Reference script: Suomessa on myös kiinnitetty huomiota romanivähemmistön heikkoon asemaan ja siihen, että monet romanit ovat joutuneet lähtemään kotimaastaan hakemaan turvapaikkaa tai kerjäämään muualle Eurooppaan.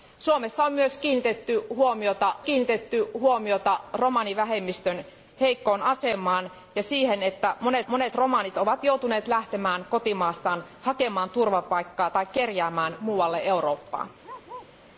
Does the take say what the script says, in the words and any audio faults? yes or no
no